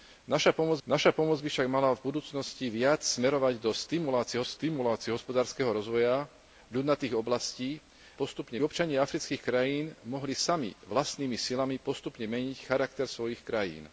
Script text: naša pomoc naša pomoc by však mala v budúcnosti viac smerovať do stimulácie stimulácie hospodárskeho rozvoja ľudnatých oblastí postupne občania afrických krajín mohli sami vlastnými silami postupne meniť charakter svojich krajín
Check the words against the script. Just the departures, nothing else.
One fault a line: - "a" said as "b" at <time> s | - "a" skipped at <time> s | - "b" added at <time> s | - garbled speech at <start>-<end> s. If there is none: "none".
none